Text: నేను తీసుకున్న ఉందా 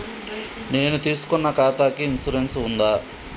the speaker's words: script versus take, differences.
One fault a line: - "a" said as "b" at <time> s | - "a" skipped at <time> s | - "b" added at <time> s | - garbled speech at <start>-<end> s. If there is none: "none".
- "ఖాతాకి ఇన్సూరెన్స్" added at 1.5 s